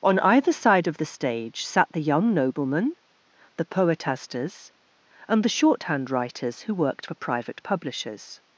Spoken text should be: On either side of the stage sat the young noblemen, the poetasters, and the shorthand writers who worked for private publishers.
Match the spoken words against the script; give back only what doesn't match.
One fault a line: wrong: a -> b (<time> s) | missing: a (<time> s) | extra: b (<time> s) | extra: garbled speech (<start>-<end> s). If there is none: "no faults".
no faults